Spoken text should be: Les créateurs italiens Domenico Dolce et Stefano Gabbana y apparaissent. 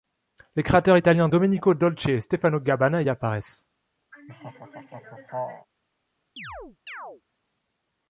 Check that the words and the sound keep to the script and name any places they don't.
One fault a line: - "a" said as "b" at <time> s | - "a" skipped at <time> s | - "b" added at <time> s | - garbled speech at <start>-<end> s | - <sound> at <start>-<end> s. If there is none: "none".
- laugh at 4.1-5.7 s
- chirp at 6.4-7.2 s